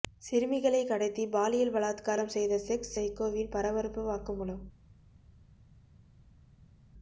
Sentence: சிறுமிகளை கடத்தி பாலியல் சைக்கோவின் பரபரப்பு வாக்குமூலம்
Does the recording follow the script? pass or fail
fail